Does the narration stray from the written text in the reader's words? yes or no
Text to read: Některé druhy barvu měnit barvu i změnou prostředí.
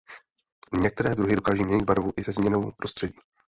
yes